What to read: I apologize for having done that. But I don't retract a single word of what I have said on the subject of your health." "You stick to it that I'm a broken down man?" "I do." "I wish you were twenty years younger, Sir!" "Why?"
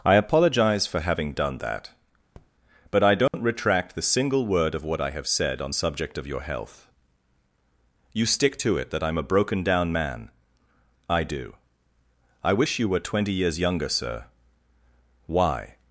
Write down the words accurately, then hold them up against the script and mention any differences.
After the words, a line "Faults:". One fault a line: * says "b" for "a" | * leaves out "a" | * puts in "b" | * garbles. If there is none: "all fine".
I apologize for having done that. But I don't retract the single word of what I have said on subject of your health." "You stick to it that I'm a broken down man?" "I do." "I wish you were twenty years younger, Sir!" "Why?"
Faults:
* says "the" for "a"
* leaves out "the"